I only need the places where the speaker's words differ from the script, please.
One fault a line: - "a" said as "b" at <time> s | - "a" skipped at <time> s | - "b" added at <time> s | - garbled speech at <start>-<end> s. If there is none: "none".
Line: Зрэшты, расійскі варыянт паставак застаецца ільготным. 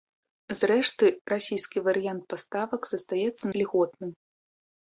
none